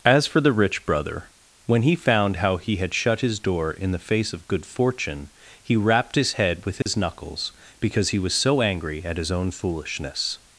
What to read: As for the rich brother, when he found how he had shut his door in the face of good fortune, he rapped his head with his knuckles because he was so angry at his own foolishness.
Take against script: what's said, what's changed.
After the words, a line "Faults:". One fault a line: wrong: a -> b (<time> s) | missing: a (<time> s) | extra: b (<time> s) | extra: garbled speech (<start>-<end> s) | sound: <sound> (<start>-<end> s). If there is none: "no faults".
As for the rich brother, when he found how he had shut his door in the face of good fortune, he rapped his head with his knuckles because he was so angry at his own foolishness.
Faults:
sound: dropout (6.8-6.9 s)